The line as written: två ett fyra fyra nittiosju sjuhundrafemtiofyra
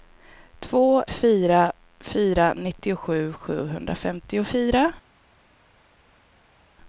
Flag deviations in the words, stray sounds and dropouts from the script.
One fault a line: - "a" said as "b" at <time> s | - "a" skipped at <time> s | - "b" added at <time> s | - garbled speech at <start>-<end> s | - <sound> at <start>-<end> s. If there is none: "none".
- "ett" skipped at 1.1 s